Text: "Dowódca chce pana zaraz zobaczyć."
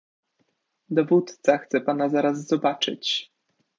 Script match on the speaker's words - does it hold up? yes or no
yes